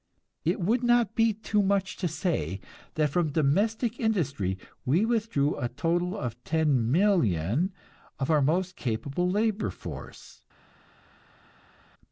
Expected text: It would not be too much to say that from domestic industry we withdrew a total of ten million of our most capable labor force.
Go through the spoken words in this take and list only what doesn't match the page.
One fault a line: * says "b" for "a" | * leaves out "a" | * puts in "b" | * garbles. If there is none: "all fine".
all fine